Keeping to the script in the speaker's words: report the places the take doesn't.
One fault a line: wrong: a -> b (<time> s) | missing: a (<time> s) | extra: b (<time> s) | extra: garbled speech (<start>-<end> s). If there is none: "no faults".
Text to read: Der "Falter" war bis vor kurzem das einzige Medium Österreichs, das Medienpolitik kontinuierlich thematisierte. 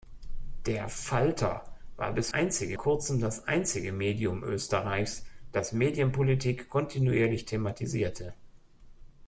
wrong: vor -> einzige (2.3 s)